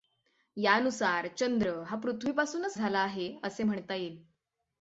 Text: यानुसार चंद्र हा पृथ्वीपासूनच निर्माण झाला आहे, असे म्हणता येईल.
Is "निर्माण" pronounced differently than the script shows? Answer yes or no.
yes